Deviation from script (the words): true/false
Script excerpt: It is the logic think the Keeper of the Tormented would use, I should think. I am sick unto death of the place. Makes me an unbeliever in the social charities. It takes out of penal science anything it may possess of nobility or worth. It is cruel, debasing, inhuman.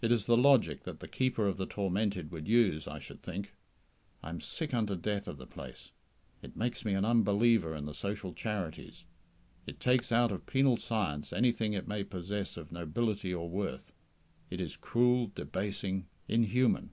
true